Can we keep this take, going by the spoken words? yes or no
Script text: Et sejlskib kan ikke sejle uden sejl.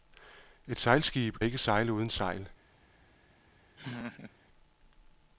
no